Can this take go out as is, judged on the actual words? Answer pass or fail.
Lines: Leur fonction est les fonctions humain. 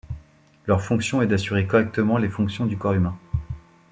fail